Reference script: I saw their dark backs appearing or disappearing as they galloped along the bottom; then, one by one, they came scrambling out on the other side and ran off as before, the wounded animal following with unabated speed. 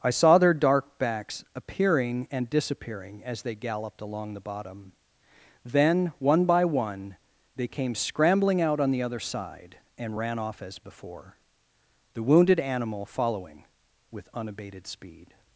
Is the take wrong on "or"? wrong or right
wrong